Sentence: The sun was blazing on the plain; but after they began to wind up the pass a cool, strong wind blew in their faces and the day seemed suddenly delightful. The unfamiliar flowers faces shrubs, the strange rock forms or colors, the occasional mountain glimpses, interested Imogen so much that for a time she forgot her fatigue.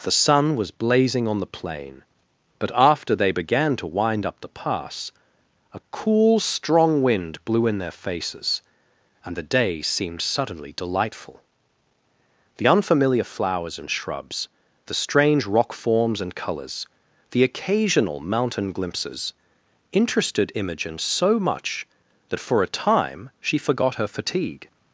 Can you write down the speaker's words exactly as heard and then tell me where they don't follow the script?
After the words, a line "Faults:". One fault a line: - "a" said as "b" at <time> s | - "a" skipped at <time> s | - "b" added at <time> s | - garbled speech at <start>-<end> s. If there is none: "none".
The sun was blazing on the plain; but after they began to wind up the pass a cool, strong wind blew in their faces and the day seemed suddenly delightful. The unfamiliar flowers and shrubs, the strange rock forms and colors, the occasional mountain glimpses, interested Imogen so much that for a time she forgot her fatigue.
Faults:
- "faces" said as "and" at 13.8 s
- "or" said as "and" at 16.2 s